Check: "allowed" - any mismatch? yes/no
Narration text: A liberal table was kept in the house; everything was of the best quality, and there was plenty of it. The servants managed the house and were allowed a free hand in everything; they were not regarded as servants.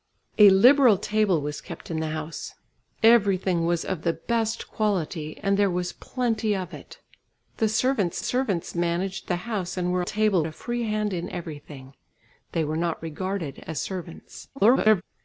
yes